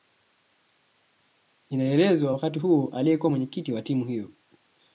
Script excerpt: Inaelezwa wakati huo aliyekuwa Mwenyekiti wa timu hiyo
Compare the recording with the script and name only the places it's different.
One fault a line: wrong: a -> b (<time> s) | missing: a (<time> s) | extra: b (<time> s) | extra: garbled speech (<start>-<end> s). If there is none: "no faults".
no faults